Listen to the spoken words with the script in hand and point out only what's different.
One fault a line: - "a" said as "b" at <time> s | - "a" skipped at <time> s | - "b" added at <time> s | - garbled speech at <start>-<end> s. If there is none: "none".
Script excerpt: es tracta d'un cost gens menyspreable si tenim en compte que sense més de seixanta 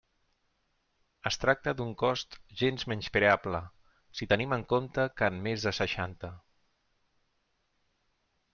- "sense" said as "en" at 5.3 s